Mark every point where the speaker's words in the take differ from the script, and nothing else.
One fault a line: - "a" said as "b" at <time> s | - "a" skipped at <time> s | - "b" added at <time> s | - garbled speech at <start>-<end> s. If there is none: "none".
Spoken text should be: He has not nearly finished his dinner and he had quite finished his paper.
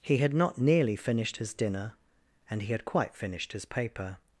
- "has" said as "had" at 0.2 s